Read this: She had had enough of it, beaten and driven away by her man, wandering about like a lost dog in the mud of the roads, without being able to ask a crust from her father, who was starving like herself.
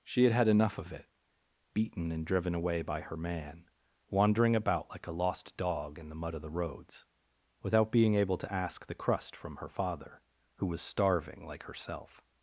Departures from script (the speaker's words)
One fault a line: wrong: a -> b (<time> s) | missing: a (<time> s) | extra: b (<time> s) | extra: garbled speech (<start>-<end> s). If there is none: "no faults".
wrong: a -> the (8.9 s)